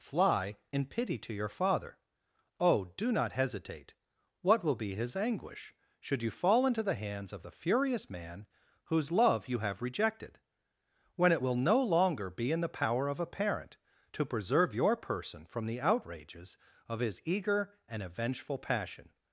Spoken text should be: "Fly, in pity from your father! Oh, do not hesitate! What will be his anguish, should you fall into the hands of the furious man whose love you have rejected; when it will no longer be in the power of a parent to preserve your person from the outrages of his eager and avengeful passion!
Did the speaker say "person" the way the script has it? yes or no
yes